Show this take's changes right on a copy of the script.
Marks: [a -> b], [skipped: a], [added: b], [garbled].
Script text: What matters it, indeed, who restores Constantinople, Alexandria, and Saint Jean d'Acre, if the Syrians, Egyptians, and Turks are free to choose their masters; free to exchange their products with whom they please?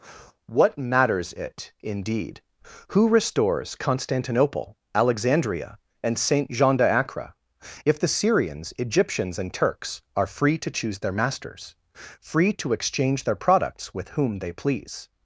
What matters it, indeed, who restores Constantinople, Alexandria, and Saint Jean d'Acre, if the Syrians, Egyptians, and Turks are free to choose their masters; free to exchange their products with whom they please?